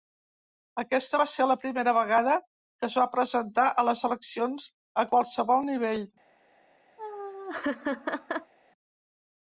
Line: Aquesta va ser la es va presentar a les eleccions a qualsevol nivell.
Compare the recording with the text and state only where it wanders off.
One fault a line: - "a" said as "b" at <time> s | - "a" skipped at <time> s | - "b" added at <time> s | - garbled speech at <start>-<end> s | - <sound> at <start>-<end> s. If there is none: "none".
- "primera vegada que" added at 1.6 s
- laugh at 7.0-8.5 s